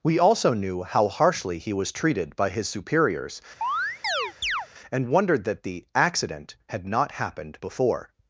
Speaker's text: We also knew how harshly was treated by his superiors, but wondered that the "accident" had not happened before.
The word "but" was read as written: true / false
false